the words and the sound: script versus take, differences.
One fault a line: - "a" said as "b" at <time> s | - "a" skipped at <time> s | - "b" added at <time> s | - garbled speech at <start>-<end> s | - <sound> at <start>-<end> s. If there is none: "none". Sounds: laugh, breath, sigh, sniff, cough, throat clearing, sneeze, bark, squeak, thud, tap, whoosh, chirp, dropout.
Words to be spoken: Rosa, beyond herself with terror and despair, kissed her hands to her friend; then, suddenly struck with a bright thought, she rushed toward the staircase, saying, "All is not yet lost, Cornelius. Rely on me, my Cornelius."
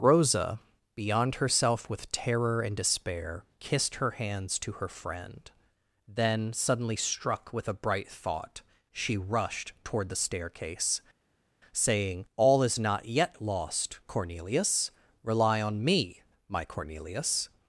none